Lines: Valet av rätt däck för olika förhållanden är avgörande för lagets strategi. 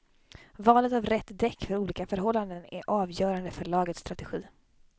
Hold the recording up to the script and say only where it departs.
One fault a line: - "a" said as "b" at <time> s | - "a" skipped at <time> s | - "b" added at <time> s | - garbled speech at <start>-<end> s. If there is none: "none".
none